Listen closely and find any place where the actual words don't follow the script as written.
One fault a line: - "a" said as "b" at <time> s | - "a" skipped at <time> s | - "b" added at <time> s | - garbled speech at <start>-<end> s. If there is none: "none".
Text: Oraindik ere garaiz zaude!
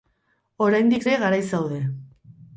none